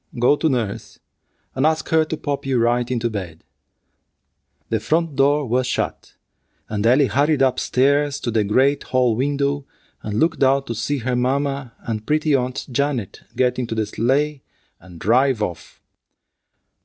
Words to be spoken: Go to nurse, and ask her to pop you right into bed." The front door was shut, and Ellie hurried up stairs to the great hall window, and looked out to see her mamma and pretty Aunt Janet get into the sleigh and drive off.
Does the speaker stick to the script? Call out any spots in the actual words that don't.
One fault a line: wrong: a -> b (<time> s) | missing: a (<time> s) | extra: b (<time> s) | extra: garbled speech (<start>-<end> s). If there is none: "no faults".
no faults